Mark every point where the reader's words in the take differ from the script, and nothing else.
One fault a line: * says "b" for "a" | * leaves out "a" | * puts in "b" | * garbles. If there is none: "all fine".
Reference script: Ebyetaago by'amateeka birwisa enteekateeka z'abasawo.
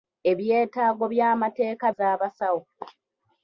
* leaves out "birwisa enteekateeka"